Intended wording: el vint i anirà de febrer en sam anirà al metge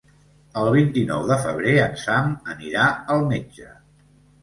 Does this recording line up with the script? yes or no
no